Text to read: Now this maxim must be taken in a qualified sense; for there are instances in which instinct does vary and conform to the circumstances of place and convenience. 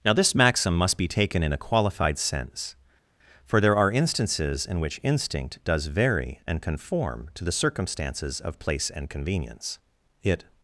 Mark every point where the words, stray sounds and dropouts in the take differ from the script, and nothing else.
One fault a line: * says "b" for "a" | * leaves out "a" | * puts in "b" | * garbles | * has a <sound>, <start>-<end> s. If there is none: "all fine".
* puts in "It"